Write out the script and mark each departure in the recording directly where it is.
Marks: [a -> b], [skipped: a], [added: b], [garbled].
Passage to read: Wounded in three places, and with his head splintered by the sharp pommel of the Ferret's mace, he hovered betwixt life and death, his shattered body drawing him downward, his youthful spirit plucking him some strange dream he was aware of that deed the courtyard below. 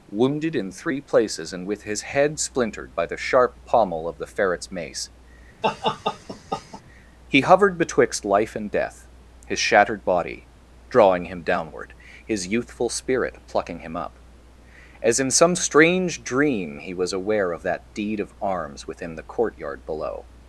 Wounded in three places, and with his head splintered by the sharp pommel of the Ferret's mace, he hovered betwixt life and death, his shattered body drawing him downward, his youthful spirit plucking him [added: up As in] some strange dream he was aware of that deed [added: of arms within] the courtyard below.